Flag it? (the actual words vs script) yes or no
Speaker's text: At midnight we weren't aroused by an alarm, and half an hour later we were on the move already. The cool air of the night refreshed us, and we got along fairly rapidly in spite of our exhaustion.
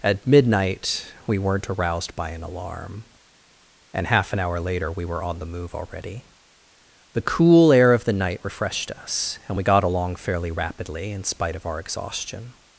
no